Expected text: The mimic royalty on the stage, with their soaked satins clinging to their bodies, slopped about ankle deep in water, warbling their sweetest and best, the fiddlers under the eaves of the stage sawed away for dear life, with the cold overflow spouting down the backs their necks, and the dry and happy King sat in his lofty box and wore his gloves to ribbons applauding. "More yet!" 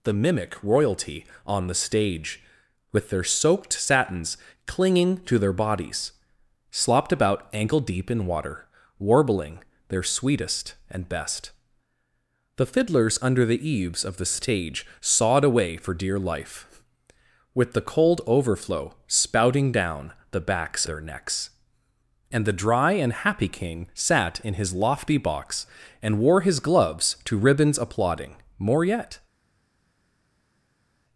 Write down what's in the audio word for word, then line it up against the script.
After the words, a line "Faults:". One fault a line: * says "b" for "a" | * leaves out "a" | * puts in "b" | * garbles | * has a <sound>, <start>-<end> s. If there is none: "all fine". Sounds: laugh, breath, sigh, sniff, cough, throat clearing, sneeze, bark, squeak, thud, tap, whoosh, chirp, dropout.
The mimic royalty on the stage, with their soaked satins clinging to their bodies, slopped about ankle deep in water, warbling their sweetest and best, the fiddlers under the eaves of the stage sawed away for dear life, with the cold overflow spouting down the backs their necks, and the dry and happy King sat in his lofty box and wore his gloves to ribbons applauding. "More yet!"
Faults:
all fine